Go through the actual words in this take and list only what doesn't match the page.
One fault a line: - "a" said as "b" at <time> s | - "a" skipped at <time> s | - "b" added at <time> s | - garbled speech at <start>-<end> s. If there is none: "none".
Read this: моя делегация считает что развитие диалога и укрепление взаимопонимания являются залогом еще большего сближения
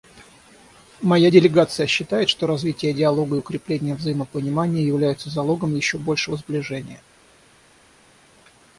none